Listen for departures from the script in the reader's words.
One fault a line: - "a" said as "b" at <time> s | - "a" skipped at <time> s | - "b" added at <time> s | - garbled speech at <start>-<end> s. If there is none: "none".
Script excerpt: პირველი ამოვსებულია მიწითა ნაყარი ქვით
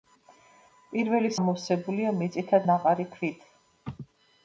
none